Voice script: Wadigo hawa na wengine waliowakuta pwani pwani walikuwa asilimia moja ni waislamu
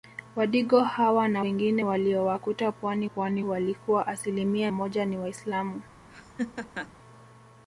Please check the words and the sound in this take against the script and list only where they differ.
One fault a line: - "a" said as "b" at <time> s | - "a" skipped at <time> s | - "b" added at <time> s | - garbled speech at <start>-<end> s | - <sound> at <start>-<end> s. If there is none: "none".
- laugh at 6.1-6.9 s